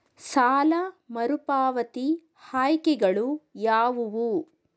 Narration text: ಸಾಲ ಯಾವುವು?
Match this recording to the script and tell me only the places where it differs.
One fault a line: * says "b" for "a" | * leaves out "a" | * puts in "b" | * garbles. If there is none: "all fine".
* puts in "ಮರುಪಾವತಿ ಆಯ್ಕೆಗಳು"